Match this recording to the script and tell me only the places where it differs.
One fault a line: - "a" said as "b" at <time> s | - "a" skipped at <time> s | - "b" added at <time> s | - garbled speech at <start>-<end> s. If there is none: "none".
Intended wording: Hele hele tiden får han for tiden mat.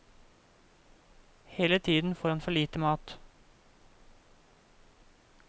- "hele" skipped at 1.8 s
- "tiden" said as "lite" at 2.5 s